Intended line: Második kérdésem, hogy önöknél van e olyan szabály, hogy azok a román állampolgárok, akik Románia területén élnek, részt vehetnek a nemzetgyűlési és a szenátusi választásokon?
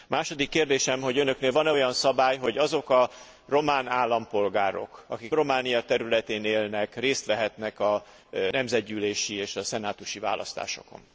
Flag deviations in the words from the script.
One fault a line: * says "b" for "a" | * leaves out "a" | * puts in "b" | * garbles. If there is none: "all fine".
all fine